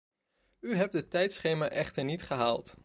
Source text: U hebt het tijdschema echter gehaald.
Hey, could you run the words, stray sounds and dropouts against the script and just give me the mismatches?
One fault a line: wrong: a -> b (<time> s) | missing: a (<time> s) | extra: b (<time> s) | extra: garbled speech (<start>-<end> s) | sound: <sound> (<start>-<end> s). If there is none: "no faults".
extra: niet (2.0 s)